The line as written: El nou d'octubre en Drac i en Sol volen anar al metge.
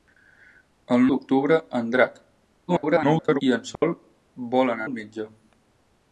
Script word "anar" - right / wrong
wrong